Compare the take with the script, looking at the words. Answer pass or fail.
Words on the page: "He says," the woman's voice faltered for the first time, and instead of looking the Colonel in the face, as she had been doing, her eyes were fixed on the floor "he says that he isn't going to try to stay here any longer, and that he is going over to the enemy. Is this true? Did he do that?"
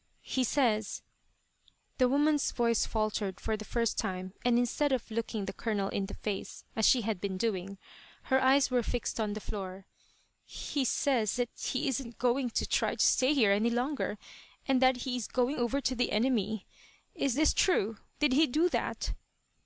pass